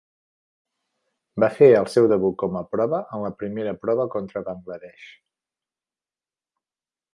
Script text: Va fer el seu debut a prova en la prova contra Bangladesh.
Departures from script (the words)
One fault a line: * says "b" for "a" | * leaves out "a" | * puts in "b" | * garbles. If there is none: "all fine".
* puts in "com"
* puts in "primera"